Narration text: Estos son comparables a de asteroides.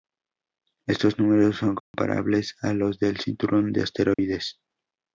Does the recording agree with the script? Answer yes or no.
no